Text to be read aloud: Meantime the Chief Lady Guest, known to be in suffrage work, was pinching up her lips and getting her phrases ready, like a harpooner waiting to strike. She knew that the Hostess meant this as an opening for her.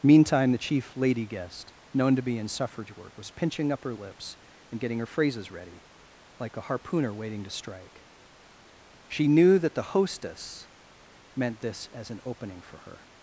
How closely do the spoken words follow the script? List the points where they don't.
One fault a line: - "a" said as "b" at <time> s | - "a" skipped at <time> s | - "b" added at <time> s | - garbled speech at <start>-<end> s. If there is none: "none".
none